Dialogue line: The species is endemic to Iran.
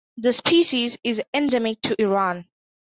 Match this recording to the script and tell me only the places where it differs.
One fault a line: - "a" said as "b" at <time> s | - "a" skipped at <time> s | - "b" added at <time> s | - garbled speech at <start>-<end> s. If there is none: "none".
none